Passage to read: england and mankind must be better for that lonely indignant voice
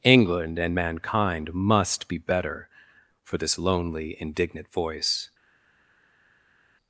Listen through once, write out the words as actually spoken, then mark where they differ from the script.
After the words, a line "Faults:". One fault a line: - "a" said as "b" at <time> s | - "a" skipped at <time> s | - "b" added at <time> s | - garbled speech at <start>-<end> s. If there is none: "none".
england and mankind must be better for this lonely indignant voice
Faults:
- "that" said as "this" at 3.4 s